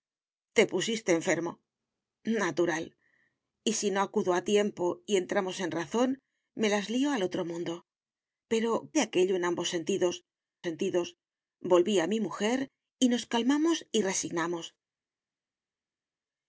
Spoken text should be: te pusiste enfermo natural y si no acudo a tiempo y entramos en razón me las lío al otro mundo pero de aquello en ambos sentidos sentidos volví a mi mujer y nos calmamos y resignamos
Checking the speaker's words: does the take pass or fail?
pass